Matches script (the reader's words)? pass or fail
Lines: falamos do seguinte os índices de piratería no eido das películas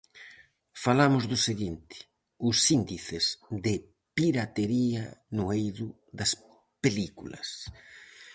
pass